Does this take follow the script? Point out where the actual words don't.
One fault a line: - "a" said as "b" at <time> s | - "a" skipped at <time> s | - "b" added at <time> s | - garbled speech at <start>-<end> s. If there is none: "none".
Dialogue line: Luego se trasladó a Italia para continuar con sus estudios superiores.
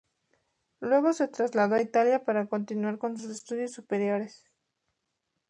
none